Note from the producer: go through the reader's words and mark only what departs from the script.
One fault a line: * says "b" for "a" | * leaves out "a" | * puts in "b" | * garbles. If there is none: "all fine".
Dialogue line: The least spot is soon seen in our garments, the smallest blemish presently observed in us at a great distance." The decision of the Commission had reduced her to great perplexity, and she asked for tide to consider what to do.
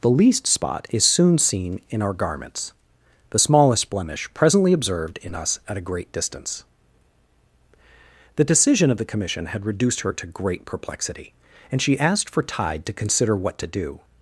all fine